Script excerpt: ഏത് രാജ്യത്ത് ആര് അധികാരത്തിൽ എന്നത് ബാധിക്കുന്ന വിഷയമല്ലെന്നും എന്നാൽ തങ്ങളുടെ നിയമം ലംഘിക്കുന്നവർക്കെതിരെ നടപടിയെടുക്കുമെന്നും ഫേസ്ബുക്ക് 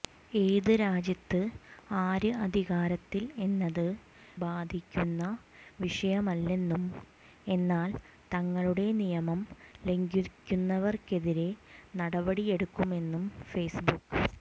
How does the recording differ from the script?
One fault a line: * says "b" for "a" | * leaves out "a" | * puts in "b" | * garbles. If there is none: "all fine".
all fine